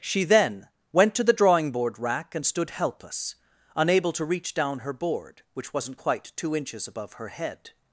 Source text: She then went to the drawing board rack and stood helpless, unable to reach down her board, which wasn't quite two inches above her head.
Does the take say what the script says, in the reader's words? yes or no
yes